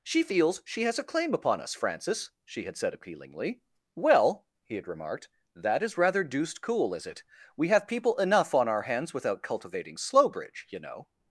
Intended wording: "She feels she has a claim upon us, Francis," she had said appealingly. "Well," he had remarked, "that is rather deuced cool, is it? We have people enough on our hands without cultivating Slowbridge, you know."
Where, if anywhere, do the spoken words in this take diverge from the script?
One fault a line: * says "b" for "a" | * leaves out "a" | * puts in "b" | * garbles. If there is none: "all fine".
all fine